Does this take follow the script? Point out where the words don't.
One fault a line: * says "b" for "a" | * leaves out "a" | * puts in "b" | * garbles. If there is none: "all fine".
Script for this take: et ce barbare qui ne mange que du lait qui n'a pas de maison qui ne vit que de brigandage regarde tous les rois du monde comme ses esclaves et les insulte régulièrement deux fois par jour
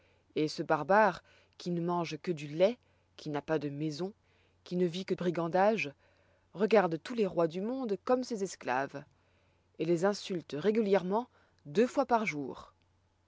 * leaves out "de"